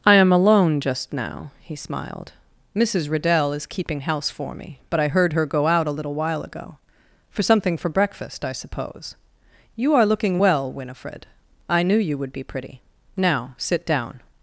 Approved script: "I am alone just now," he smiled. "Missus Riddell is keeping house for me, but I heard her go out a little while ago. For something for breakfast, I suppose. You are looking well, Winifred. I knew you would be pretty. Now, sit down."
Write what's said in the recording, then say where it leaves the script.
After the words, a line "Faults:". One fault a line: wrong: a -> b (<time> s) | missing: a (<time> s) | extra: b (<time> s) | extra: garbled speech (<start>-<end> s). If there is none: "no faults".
"I am alone just now," he smiled. "Missus Riddell is keeping house for me, but I heard her go out a little while ago. For something for breakfast, I suppose. You are looking well, Winifred. I knew you would be pretty. Now, sit down."
Faults:
no faults